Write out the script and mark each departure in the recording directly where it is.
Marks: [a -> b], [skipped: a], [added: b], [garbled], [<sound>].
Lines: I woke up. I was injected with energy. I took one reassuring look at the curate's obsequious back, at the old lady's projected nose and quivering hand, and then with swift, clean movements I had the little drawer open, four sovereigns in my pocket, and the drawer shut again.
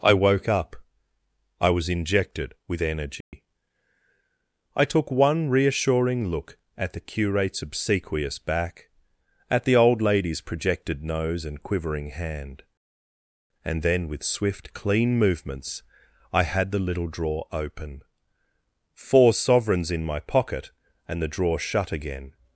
I woke up. I was injected with energy. [dropout] I took one reassuring look at the curate's obsequious back, at the old lady's projected nose and quivering hand, and then with swift, clean movements I had the little drawer open, four sovereigns in my pocket, and the drawer shut again.